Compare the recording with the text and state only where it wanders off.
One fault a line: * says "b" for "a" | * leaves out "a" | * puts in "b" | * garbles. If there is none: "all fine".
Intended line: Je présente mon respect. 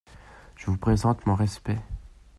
* puts in "vous"